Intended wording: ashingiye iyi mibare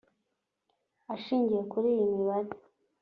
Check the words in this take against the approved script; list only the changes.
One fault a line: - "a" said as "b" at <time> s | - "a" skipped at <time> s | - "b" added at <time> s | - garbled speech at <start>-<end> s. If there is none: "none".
- "kuri" added at 1.7 s